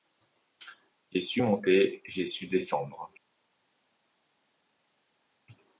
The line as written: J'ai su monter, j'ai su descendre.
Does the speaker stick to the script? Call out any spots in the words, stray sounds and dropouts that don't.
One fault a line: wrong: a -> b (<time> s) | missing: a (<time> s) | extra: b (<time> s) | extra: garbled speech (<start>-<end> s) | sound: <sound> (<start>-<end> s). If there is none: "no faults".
no faults